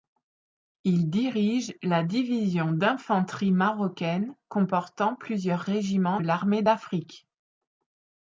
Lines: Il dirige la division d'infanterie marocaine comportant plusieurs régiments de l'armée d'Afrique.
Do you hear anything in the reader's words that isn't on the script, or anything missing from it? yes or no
yes